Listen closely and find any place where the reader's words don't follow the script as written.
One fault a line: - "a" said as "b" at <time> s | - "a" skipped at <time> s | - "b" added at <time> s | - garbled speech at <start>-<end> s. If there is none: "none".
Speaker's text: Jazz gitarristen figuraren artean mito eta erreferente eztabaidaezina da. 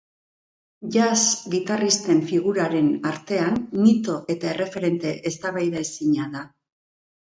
none